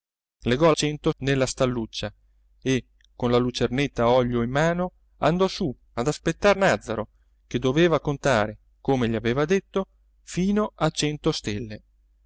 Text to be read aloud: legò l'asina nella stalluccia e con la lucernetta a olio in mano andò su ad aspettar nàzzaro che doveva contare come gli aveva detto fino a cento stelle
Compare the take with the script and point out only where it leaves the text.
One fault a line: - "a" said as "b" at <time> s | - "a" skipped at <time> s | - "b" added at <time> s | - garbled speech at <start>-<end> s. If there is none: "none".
- "l'asina" said as "cento" at 0.7 s